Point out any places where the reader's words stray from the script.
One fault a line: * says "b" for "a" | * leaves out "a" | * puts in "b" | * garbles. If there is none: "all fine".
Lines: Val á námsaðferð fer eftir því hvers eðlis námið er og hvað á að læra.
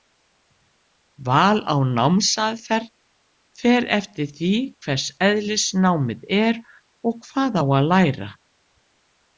all fine